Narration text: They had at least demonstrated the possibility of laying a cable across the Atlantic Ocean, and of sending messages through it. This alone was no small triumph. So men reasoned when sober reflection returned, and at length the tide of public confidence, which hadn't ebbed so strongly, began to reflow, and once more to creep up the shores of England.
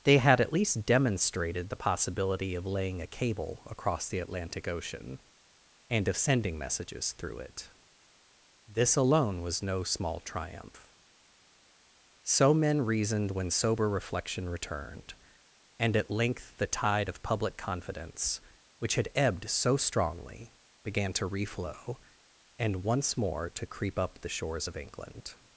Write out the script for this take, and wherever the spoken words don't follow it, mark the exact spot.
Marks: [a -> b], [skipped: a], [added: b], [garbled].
They had at least demonstrated the possibility of laying a cable across the Atlantic Ocean, and of sending messages through it. This alone was no small triumph. So men reasoned when sober reflection returned, and at length the tide of public confidence, which [hadn't -> had] ebbed so strongly, began to reflow, and once more to creep up the shores of England.